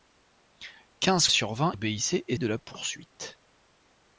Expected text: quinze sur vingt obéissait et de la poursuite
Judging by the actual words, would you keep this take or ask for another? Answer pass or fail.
pass